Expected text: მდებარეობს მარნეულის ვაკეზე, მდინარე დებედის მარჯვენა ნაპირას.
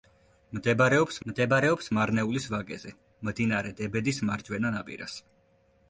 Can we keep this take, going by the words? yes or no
no